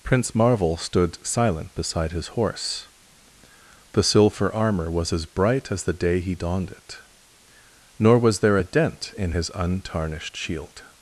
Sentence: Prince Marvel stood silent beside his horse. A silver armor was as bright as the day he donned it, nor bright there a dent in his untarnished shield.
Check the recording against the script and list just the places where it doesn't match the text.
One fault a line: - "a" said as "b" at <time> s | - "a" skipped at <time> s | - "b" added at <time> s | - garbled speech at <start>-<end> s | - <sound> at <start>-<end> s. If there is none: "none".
- "A" said as "The" at 3.9 s
- "bright" said as "was" at 8.2 s